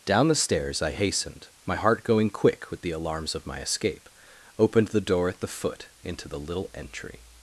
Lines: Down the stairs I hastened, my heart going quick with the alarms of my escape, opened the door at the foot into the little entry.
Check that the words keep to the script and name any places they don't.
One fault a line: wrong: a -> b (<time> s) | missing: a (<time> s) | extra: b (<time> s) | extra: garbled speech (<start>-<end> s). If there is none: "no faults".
no faults